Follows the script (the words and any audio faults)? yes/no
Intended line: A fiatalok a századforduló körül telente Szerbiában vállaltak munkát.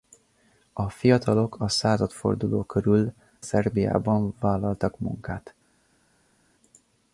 no